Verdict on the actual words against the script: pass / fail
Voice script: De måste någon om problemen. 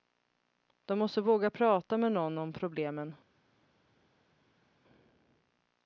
fail